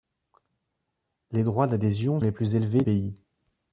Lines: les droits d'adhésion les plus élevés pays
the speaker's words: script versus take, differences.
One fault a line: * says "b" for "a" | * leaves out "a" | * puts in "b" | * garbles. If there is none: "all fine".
all fine